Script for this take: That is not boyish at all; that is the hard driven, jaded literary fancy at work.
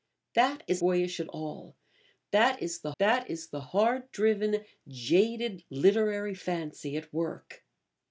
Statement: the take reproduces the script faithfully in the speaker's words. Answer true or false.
false